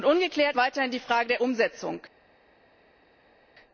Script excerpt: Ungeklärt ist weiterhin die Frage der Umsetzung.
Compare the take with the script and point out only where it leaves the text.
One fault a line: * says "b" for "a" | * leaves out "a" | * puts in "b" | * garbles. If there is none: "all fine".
* leaves out "ist"